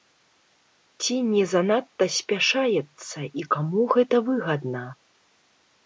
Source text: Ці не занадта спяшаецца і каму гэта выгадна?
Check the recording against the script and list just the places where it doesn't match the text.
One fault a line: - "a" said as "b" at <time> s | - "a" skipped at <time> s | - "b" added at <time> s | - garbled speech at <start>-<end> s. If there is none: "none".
none